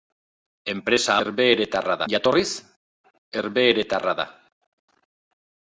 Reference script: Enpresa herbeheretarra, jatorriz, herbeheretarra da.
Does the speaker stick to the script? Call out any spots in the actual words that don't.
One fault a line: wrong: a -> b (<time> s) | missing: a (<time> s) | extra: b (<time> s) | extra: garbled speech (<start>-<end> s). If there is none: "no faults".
no faults